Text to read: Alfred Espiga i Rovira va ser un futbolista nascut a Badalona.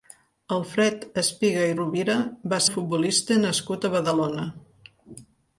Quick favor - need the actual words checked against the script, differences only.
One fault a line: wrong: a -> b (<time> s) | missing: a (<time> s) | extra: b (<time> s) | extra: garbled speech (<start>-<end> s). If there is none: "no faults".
missing: ser (2.6 s)